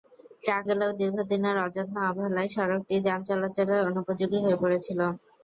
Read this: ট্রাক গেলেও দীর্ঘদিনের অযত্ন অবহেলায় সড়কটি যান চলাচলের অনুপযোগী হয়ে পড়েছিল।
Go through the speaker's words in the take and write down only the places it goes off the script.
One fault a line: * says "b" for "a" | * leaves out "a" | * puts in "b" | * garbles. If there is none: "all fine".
all fine